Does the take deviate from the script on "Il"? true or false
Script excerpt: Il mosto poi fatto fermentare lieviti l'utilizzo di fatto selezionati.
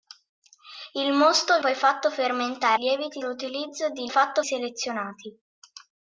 false